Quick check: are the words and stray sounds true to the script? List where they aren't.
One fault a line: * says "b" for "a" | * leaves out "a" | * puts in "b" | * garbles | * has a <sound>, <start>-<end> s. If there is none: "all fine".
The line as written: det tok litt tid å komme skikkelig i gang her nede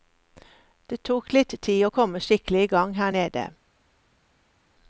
all fine